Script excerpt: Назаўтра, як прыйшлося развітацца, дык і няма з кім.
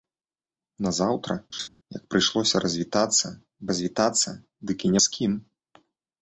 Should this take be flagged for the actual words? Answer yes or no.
yes